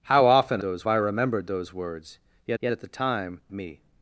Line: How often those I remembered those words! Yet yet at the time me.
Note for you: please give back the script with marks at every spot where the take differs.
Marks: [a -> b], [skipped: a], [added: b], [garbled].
How often those I remembered those words! Yet yet at the time me.